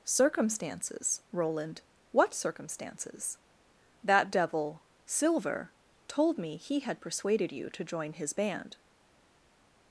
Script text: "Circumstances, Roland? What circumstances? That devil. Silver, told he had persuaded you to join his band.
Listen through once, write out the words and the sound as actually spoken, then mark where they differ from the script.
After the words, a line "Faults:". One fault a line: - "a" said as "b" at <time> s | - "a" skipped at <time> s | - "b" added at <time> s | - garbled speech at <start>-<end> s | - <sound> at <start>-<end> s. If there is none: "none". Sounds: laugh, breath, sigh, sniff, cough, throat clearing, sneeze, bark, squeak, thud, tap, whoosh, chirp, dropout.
"Circumstances, Roland? What circumstances? That devil. Silver, told me he had persuaded you to join his band.
Faults:
- "me" added at 6.4 s